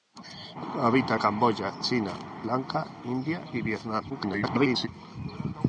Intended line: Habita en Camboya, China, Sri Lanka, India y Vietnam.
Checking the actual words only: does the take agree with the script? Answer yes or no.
no